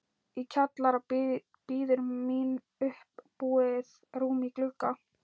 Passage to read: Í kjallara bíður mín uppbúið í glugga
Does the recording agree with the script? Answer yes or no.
no